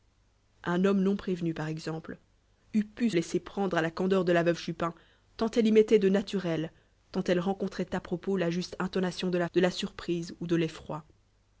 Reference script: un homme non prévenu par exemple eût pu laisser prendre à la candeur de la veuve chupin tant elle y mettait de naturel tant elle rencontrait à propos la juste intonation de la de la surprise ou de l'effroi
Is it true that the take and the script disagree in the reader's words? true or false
false